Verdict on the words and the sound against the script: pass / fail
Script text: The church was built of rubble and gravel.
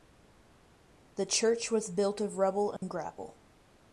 fail